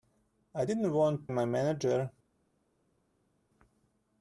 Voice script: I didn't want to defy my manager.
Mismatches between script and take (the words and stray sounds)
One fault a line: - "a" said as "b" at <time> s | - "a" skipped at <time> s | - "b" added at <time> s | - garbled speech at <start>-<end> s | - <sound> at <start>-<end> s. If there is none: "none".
- "to defy" skipped at 1.3 s